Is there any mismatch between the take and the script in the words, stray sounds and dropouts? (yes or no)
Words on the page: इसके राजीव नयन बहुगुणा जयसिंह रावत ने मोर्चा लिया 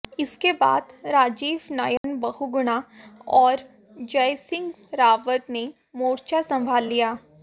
yes